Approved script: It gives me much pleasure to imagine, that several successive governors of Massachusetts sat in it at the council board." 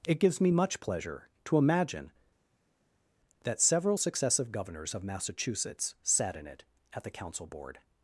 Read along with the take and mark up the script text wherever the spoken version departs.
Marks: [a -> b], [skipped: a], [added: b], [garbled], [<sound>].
It gives me much pleasure to imagine, that several successive governors of Massachusetts sat in it at the council board."